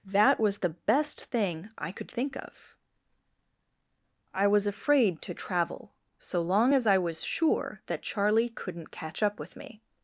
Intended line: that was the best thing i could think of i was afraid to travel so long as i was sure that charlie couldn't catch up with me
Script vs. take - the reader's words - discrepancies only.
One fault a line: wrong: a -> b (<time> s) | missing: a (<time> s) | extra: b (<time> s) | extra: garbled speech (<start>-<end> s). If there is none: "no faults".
no faults